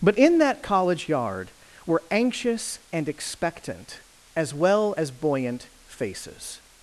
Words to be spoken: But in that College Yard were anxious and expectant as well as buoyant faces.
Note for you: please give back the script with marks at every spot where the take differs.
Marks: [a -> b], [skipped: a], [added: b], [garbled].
But in that College Yard were anxious and expectant as well as buoyant faces.